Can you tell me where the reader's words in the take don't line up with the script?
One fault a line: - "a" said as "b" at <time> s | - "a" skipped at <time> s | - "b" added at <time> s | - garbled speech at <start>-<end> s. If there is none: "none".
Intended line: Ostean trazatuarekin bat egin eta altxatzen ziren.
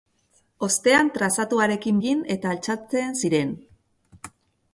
- "bat" skipped at 2.0 s